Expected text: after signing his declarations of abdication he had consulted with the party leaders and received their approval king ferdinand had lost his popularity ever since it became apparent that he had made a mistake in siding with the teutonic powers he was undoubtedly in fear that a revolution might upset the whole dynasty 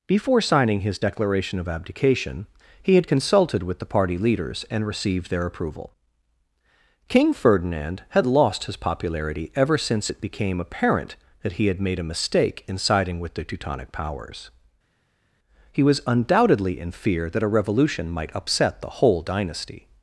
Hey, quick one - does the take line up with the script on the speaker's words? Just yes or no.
no